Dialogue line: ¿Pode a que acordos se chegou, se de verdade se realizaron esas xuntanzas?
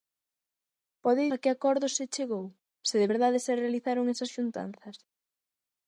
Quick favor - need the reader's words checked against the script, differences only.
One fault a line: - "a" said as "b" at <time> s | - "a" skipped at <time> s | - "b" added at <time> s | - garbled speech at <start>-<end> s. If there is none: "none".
none